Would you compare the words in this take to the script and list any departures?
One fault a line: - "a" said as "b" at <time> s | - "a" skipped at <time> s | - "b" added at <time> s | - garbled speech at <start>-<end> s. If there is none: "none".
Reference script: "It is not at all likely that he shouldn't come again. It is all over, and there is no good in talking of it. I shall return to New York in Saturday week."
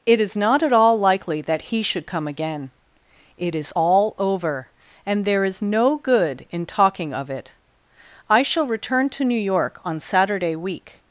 - "shouldn't" said as "should" at 1.8 s
- "in" said as "on" at 9.8 s